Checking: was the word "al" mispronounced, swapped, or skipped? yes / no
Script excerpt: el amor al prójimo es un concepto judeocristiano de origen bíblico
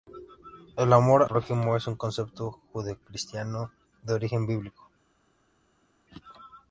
yes